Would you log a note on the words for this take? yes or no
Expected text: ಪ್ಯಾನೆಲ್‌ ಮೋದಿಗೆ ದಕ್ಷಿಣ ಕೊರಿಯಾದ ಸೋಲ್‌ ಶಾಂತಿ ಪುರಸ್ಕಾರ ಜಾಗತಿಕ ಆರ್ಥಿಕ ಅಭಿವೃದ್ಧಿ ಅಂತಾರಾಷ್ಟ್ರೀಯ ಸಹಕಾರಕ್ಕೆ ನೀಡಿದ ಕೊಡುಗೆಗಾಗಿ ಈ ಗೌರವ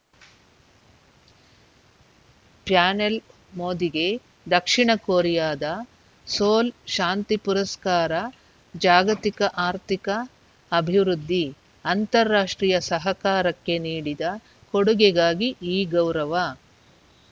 no